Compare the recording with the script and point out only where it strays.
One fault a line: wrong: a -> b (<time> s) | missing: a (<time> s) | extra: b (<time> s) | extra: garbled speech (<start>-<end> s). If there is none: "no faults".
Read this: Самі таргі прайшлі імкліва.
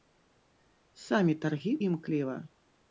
missing: прайшлі (1.7 s)